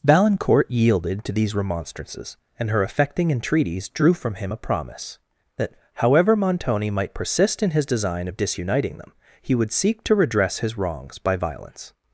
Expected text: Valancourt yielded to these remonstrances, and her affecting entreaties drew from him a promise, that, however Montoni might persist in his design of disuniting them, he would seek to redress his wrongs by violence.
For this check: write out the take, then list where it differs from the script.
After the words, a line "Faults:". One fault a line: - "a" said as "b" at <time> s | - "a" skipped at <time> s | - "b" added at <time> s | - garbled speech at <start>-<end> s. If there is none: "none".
Valancourt yielded to these remonstrances, and her affecting entreaties drew from him a promise, that, however Montoni might persist in his design of disuniting them, he would seek to redress his wrongs by violence.
Faults:
none